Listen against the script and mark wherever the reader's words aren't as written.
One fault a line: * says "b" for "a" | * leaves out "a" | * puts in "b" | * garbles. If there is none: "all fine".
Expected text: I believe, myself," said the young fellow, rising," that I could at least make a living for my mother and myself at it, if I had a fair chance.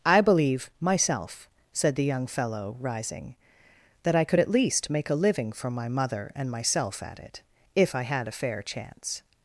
all fine